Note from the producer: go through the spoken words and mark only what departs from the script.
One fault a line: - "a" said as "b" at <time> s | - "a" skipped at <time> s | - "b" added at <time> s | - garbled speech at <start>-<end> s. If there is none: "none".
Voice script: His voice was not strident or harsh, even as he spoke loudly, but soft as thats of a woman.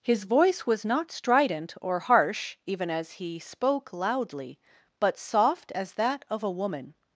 - "thats" said as "that" at 5.9 s